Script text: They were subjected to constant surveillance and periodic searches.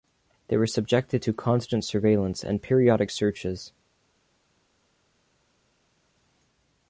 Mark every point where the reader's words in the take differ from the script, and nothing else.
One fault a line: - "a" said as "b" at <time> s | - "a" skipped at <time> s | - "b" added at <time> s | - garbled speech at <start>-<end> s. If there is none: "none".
none